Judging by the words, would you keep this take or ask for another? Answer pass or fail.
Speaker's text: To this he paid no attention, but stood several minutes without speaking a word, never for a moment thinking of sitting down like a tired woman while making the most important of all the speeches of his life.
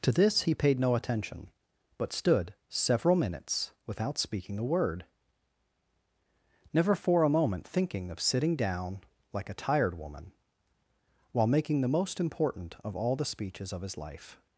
pass